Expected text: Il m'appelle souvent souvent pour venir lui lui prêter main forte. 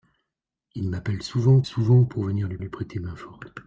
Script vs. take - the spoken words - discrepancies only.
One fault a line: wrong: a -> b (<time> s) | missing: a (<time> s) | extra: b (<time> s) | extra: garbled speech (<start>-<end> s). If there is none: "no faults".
no faults